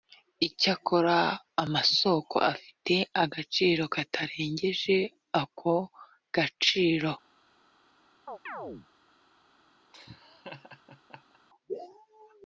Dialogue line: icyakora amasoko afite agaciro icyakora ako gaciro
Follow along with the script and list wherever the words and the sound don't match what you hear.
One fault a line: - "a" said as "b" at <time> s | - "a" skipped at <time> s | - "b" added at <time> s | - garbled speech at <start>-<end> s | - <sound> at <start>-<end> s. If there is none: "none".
- "icyakora" said as "katarengeje" at 4.0 s
- chirp at 8.3-8.9 s
- laugh at 9.9-11.4 s